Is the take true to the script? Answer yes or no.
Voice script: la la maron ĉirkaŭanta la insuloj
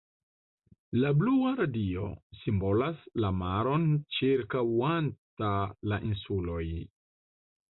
no